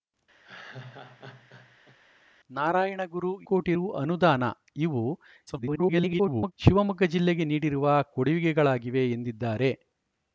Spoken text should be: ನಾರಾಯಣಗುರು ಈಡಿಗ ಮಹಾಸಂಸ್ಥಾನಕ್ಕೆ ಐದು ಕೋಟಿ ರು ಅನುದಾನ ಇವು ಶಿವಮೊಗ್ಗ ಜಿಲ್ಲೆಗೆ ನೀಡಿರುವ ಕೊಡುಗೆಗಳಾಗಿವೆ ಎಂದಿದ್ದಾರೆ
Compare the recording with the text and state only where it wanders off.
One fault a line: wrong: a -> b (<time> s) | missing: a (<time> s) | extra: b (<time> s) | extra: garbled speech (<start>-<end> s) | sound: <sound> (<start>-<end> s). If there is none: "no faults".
sound: laugh (0.4-2.0 s)
missing: ಈಡಿಗ ಮಹಾಸಂಸ್ಥಾನಕ್ಕೆ ಐದು (3.3 s)
extra: garbled speech (5.5-6.5 s)